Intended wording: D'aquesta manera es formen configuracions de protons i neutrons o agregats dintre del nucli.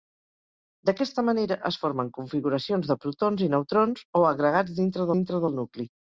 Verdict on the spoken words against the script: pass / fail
fail